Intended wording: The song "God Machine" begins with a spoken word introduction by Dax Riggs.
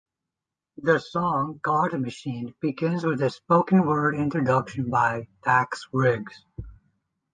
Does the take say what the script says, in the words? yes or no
yes